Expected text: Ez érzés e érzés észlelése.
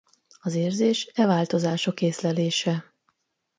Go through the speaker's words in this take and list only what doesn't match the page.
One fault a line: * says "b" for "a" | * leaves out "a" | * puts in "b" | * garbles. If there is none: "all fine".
* says "Az" for "Ez"
* says "változások" for "érzés"